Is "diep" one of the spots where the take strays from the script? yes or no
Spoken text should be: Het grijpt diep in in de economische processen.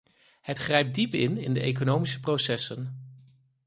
no